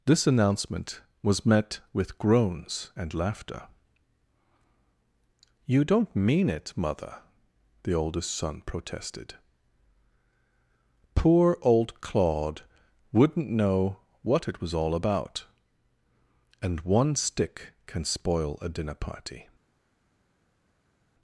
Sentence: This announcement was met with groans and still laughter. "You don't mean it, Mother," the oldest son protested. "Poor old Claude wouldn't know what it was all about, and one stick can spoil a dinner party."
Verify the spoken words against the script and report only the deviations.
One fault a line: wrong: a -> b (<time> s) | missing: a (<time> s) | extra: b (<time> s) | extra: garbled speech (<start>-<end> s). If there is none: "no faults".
missing: still (3.1 s)